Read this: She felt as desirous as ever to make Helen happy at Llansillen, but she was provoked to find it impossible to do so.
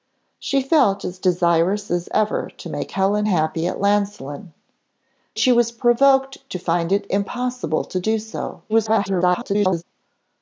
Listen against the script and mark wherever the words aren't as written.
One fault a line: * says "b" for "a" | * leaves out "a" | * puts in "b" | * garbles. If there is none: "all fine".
* leaves out "but"
* garbles